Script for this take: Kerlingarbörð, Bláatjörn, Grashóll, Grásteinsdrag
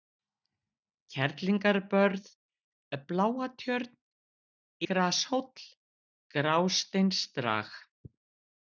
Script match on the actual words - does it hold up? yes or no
yes